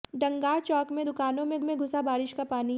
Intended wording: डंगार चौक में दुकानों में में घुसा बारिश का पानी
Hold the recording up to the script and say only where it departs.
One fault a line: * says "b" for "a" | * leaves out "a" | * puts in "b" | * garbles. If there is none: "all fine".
all fine